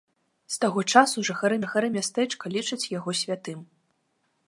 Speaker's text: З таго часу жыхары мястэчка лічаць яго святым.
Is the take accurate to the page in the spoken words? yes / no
no